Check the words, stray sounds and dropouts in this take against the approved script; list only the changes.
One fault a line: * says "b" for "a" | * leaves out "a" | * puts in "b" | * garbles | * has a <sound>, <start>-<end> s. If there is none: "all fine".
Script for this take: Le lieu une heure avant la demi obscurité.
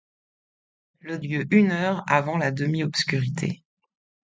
all fine